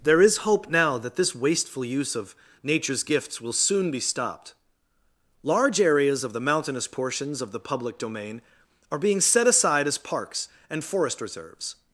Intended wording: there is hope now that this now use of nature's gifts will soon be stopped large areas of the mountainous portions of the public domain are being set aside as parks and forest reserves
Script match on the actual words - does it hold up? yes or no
no